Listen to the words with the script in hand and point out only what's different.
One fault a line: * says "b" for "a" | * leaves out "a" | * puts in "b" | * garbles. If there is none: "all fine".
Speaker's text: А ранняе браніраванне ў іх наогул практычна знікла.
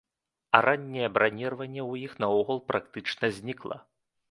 all fine